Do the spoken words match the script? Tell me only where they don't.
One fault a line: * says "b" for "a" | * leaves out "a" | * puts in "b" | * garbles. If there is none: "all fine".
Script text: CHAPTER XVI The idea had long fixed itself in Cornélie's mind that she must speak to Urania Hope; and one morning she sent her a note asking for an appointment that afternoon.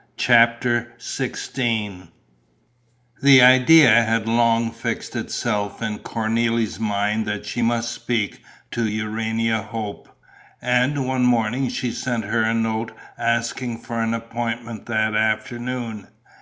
all fine